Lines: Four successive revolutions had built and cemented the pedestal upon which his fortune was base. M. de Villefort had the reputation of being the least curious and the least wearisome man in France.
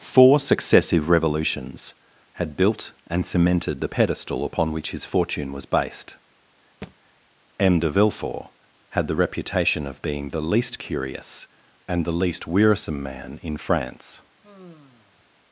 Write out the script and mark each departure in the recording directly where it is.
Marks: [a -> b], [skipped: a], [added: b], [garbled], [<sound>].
Four successive revolutions had built and cemented the pedestal upon which his fortune was [base. -> based] [thud] M. de Villefort had the reputation of being the least curious and the least wearisome man in France. [sigh]